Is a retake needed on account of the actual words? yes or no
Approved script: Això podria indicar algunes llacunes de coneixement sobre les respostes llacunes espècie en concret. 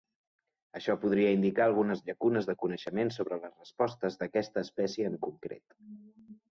yes